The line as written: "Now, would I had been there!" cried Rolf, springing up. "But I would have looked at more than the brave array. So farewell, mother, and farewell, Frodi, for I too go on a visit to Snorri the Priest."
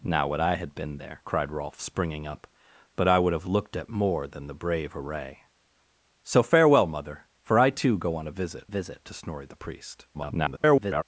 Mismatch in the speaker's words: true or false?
true